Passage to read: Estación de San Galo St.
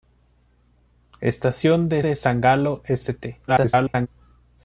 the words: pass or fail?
fail